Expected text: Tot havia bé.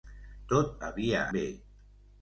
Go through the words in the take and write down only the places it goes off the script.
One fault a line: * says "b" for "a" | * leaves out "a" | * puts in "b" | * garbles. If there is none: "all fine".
all fine